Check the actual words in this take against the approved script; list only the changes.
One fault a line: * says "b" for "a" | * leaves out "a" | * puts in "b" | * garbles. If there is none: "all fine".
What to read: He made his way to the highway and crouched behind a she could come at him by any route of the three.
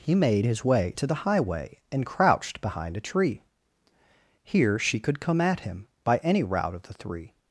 * puts in "tree Here"